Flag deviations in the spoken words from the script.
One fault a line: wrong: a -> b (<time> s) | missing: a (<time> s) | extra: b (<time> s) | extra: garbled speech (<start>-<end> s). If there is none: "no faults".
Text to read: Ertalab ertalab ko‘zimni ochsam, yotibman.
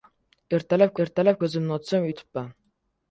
no faults